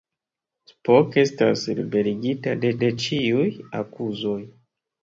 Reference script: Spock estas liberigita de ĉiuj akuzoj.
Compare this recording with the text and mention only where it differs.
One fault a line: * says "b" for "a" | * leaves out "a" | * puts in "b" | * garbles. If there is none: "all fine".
* puts in "de"